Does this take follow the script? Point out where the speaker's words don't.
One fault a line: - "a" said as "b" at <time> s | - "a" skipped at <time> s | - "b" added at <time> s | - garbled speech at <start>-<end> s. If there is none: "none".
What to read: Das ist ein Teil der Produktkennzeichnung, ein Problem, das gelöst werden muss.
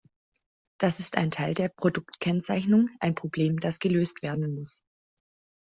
none